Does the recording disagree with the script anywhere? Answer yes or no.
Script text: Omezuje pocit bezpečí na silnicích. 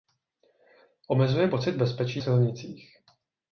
yes